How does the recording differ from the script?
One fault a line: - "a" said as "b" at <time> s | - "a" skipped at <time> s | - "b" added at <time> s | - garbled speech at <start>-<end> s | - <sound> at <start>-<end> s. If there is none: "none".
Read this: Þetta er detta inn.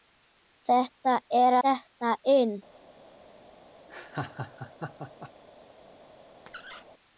- laugh at 3.9-5.3 s
- squeak at 6.5-6.8 s